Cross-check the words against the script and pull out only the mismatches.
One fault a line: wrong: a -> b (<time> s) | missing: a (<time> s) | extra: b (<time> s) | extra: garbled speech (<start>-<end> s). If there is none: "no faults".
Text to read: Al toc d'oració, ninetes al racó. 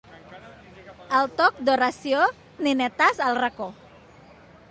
no faults